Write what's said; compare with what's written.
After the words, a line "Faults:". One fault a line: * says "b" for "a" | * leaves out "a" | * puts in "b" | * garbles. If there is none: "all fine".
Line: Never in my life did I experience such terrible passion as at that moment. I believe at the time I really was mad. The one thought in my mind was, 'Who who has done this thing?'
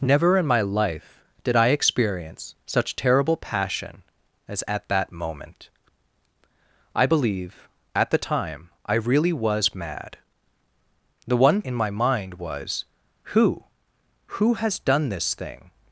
Never in my life did I experience such terrible passion as at that moment. I believe at the time I really was mad. The one in my mind was, 'Who who has done this thing?'
Faults:
* leaves out "thought"